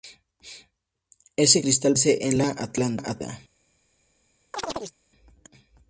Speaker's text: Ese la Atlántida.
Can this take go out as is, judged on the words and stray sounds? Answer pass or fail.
fail